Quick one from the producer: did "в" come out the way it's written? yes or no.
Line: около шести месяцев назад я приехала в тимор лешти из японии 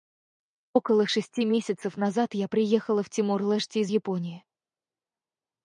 yes